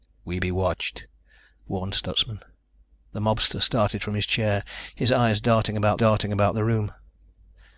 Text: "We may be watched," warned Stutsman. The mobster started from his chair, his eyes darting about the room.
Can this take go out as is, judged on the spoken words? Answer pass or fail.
fail